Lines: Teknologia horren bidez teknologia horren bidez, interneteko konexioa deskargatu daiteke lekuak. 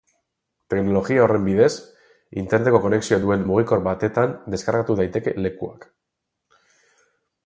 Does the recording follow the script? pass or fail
fail